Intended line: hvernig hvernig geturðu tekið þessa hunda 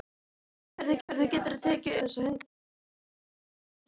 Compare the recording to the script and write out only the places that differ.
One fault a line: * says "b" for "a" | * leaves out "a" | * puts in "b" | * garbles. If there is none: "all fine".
all fine